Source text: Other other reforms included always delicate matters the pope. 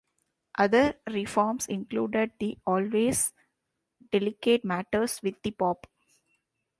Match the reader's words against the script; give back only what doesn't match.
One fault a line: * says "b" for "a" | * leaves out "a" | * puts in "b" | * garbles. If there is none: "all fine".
* leaves out "other"
* puts in "the"
* puts in "with"